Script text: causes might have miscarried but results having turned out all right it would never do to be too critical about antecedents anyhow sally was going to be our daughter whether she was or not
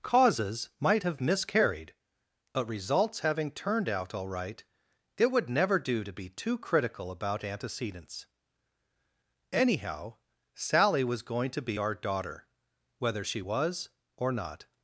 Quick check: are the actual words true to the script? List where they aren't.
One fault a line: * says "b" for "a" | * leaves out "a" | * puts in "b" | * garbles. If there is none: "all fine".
all fine